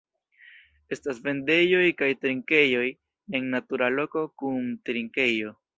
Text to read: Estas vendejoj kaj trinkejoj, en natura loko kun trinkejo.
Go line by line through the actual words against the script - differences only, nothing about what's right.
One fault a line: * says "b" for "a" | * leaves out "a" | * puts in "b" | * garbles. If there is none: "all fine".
all fine